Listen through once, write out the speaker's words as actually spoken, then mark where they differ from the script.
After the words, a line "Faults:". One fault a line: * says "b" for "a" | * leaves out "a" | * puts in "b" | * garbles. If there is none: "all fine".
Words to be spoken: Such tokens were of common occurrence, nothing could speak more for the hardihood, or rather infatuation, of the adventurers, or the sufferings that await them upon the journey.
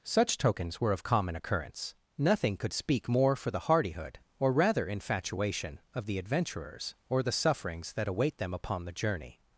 Such tokens were of common occurrence, nothing could speak more for the hardihood, or rather infatuation, of the adventurers, or the sufferings that await them upon the journey.
Faults:
all fine